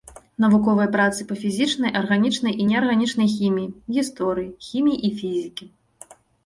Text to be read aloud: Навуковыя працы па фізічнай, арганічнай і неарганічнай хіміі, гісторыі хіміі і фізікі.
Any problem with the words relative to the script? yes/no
no